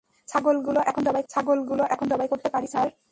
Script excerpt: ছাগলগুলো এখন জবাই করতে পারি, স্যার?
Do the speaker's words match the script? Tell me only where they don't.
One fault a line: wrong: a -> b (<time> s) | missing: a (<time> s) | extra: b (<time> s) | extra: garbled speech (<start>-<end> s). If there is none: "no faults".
extra: ছাগলগুলো এখন জবাই (1.3 s)